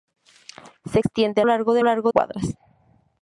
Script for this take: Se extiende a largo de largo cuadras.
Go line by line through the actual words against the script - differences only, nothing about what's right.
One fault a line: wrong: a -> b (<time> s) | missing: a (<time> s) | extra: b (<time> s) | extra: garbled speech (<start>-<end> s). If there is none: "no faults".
no faults